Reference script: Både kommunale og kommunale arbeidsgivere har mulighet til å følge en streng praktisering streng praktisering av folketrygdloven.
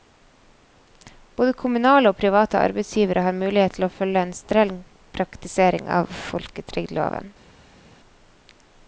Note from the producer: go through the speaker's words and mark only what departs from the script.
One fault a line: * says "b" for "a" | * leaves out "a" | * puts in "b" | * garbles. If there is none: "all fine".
* says "private" for "kommunale"
* leaves out "streng praktisering"